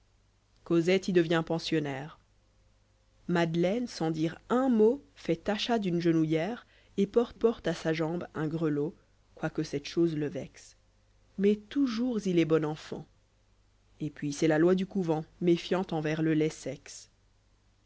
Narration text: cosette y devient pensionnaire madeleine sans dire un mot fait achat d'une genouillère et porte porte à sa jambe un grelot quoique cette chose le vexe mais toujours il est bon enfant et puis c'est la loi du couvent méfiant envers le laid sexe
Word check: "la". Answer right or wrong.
right